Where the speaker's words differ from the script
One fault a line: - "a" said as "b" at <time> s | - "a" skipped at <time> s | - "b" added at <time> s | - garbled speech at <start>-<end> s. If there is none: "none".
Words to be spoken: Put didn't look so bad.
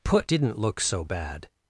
none